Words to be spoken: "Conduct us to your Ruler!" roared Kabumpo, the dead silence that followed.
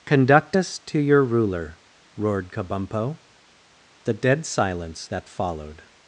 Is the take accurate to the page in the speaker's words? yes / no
yes